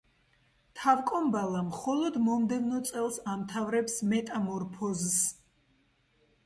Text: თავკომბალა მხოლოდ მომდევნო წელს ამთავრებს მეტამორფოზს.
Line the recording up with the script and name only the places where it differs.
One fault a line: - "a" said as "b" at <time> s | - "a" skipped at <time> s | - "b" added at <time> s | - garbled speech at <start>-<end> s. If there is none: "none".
none